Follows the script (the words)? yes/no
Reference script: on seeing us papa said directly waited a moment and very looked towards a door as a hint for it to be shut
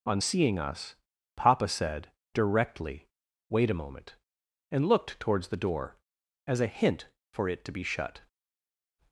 no